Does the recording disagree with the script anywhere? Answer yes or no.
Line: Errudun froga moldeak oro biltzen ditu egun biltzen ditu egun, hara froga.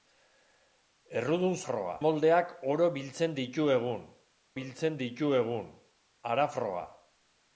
no